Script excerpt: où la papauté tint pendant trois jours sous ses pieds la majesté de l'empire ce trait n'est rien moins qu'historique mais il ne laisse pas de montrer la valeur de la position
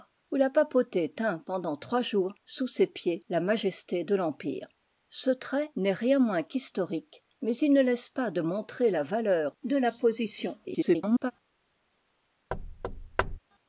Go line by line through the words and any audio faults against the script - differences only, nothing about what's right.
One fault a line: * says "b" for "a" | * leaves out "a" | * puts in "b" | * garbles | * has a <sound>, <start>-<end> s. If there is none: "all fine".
* garbles
* has a thud, 12.5-13.4 s